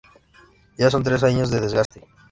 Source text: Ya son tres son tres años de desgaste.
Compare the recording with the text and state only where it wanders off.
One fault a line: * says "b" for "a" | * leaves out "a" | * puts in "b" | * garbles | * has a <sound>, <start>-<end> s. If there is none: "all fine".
* leaves out "son tres"
* has a dropout, 1.9-1.9 s